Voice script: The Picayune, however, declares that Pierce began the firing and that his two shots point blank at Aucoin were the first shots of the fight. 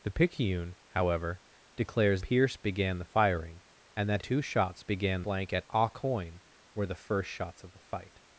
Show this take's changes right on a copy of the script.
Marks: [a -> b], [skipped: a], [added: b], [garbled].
The Picayune, however, declares [skipped: that] Pierce began the firing and that [skipped: his] two shots [point -> began] blank at Aucoin were the first shots of the fight.